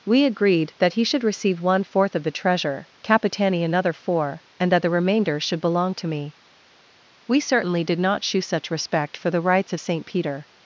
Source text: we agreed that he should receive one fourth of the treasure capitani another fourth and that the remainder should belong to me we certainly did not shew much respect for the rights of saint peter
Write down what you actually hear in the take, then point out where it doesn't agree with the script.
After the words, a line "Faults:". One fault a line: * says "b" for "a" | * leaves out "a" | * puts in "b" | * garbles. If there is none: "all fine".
we agreed that he should receive one fourth of the treasure capitani another four and that the remainder should belong to me we certainly did not shew such respect for the rights of saint peter
Faults:
* says "four" for "fourth"
* says "such" for "much"